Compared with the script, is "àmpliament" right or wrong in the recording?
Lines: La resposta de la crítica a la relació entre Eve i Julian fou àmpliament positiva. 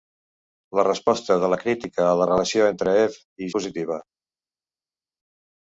wrong